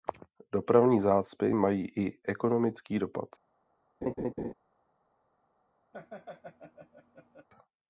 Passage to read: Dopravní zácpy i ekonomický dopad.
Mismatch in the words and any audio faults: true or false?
true